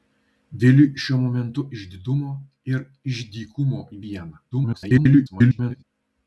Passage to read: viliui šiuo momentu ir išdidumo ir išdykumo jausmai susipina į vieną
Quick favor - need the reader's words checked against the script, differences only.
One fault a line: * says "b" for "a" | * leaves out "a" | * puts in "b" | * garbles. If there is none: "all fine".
* leaves out "ir"
* leaves out "jausmai susipina"
* garbles